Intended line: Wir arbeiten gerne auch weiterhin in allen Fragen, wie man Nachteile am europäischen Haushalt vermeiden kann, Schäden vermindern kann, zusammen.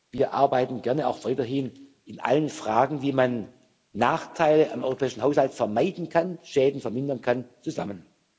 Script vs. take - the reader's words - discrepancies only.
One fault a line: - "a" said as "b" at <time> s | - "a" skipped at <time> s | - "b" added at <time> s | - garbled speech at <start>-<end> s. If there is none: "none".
none